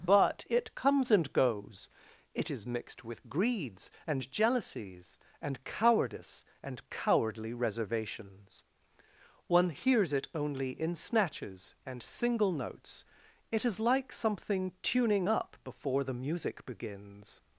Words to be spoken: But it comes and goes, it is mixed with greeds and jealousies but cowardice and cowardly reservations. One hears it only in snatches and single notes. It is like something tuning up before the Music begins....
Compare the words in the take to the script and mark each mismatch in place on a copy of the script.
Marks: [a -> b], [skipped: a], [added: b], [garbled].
But it comes and goes, it is mixed with greeds and jealousies [but -> and] cowardice and cowardly reservations. One hears it only in snatches and single notes. It is like something tuning up before the Music begins....